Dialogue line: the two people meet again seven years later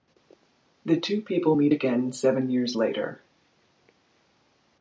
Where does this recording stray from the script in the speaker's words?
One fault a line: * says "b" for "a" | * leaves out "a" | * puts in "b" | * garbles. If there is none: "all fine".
all fine